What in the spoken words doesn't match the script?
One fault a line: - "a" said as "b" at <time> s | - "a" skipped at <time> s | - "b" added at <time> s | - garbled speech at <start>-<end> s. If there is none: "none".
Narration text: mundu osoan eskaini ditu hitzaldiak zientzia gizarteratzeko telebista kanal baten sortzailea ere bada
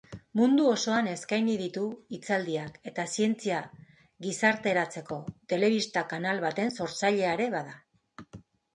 - "eta" added at 2.9 s